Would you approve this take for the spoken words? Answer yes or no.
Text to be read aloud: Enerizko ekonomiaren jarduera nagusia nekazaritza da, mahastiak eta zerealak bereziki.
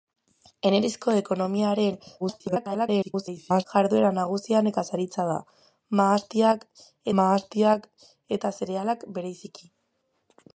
no